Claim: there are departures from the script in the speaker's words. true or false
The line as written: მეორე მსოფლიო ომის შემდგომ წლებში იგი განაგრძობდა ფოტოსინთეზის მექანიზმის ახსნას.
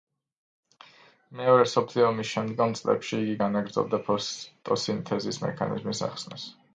false